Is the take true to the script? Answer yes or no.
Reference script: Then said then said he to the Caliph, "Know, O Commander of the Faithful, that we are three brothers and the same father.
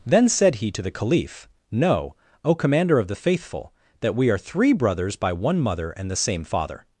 no